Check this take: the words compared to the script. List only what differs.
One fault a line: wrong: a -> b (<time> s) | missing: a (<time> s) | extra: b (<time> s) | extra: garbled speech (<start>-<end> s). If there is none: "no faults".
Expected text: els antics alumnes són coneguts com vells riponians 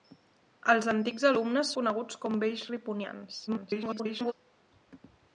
missing: són (1.7 s)
extra: garbled speech (3.5-4.3 s)